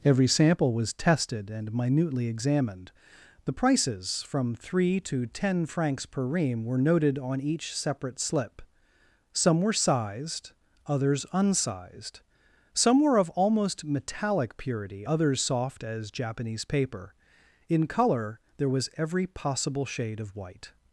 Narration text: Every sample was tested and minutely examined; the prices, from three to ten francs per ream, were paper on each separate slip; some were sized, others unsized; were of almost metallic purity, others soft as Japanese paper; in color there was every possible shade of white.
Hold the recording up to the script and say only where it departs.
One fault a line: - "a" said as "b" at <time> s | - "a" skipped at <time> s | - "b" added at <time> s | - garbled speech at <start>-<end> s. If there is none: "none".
- "paper" said as "noted" at 6.8 s
- "some" added at 12.7 s